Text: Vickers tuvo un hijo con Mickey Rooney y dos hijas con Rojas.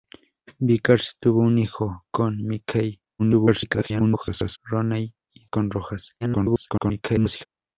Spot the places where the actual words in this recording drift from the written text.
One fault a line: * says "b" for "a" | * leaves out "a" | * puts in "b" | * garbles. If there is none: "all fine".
* garbles
* leaves out "dos hijas"
* garbles